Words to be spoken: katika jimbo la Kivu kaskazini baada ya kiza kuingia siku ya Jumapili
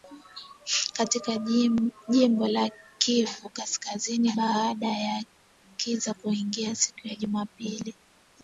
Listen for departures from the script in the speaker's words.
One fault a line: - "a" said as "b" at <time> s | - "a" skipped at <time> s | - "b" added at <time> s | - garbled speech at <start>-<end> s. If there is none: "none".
none